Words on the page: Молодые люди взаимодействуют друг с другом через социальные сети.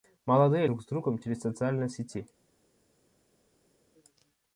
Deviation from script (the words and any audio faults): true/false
true